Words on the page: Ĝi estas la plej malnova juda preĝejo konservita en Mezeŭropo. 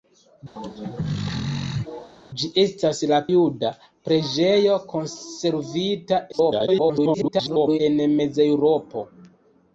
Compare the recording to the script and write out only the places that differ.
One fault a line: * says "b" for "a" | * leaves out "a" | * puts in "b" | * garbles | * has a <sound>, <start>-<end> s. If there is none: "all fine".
* has a throat clearing, 0.6-2.1 s
* leaves out "plej malnova"
* garbles